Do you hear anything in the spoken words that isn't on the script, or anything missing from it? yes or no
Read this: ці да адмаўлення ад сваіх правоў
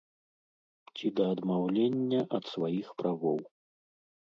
no